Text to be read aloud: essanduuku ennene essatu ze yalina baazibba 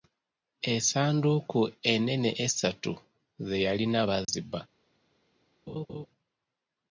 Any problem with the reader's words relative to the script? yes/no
no